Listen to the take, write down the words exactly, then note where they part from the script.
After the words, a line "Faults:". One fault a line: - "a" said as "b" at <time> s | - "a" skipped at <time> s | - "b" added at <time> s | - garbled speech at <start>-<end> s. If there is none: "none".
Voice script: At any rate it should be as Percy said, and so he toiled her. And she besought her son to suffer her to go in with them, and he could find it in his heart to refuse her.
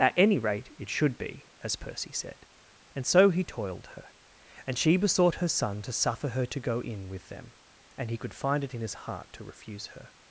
At any rate it should be as Percy said, and so he toiled her. And she besought her son to suffer her to go in with them, and he could find it in his heart to refuse her.
Faults:
none